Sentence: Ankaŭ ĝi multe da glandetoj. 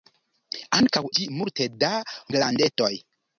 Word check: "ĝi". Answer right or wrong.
right